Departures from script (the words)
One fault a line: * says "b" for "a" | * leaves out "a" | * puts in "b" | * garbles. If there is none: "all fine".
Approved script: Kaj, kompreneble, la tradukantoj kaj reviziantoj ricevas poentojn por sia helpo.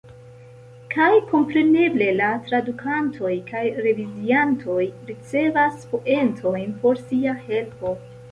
all fine